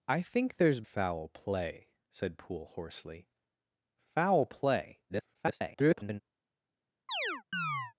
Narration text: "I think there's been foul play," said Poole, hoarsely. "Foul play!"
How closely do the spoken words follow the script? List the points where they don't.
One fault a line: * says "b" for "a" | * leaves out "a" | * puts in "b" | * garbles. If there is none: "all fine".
* leaves out "been"
* garbles